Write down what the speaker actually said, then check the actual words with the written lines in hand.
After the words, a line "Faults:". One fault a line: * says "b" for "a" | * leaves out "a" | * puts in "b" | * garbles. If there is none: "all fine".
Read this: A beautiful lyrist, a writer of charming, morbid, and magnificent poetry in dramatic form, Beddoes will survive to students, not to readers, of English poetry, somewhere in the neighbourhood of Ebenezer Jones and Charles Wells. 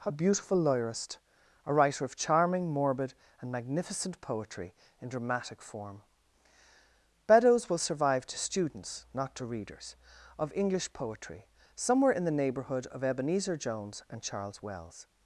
A beautiful lyrist, a writer of charming, morbid, and magnificent poetry in dramatic form, Beddoes will survive to students, not to readers, of English poetry, somewhere in the neighbourhood of Ebenezer Jones and Charles Wells.
Faults:
all fine